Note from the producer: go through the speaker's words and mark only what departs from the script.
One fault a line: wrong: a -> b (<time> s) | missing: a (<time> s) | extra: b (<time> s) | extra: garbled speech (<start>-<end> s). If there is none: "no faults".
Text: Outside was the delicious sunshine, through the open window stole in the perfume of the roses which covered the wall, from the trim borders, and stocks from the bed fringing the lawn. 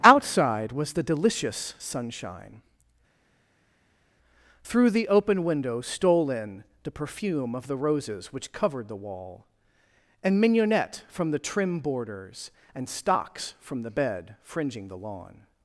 extra: and mignonette (10.2 s)